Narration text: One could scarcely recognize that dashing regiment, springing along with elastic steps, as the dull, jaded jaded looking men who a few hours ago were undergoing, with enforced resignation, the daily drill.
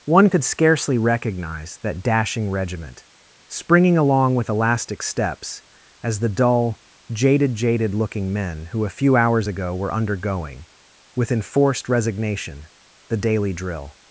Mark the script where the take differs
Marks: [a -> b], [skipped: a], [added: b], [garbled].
One could scarcely recognize that dashing regiment, springing along with elastic steps, as the dull, jaded jaded looking men who a few hours ago were undergoing, with enforced resignation, the daily drill.